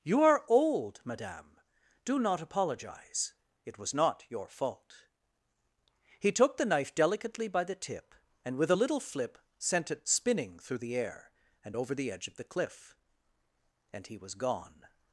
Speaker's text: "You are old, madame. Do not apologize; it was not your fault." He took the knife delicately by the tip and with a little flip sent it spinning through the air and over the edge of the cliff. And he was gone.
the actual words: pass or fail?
pass